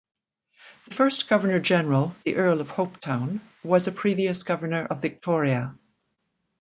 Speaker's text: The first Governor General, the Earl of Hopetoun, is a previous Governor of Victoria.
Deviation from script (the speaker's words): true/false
true